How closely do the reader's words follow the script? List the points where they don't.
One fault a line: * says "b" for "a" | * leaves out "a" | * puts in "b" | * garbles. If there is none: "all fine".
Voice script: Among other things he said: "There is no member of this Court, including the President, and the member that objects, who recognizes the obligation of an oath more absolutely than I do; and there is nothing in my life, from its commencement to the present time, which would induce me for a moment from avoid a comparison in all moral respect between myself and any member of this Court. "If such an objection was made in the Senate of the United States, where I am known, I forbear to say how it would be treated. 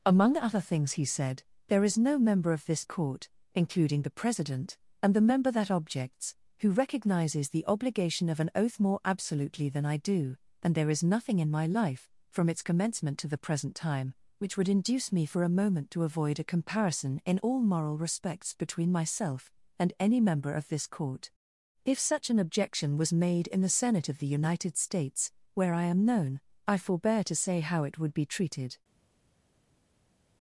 * says "to" for "from"
* says "respects" for "respect"